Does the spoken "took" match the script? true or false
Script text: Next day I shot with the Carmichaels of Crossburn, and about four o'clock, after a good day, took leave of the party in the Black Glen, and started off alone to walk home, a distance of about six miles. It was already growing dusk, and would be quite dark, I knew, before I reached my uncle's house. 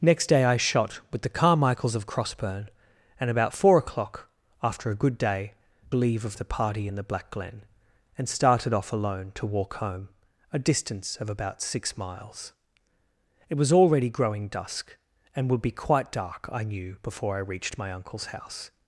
false